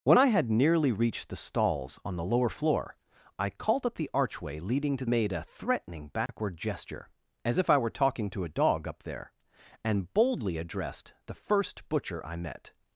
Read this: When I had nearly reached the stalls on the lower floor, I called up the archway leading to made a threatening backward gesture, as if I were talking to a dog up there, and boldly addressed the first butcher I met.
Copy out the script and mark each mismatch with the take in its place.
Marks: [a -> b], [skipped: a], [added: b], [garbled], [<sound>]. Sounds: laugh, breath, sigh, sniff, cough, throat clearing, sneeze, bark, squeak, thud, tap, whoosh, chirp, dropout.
When I had nearly reached the stalls on the lower floor, I called up the archway leading to made a threatening backward [dropout] gesture, as if I were talking to a dog up there, and boldly addressed the first butcher I met.